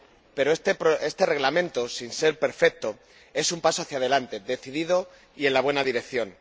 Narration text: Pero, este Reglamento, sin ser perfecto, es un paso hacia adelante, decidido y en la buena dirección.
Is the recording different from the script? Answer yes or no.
no